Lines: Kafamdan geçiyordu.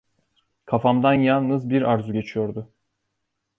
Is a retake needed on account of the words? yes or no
yes